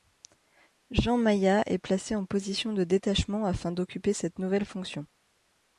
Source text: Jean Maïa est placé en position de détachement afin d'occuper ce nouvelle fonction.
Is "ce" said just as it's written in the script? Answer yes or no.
no